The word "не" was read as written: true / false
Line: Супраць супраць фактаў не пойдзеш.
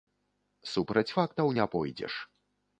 true